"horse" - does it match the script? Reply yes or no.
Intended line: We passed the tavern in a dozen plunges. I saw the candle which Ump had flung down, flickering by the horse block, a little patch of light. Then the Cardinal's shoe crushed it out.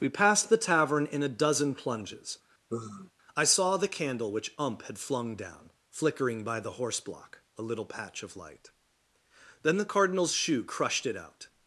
yes